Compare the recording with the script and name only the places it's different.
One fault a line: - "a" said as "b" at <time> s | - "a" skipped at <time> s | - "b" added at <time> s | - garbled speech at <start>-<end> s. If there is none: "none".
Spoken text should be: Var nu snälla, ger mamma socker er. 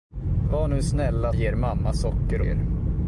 none